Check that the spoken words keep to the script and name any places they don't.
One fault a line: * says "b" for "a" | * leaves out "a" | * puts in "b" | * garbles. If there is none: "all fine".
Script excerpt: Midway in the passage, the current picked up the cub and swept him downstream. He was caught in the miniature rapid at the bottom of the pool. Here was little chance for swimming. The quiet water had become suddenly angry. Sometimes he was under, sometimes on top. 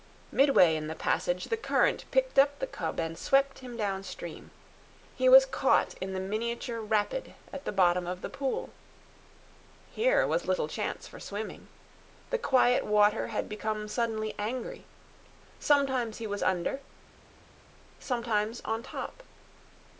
all fine